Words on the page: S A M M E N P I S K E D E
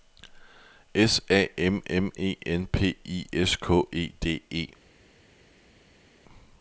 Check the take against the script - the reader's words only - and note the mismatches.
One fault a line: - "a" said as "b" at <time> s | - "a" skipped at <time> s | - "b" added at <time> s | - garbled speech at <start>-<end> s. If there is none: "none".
none